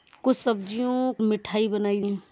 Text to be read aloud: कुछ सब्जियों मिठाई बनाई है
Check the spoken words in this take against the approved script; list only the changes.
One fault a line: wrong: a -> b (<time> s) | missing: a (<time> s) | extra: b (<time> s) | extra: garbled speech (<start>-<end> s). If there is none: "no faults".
no faults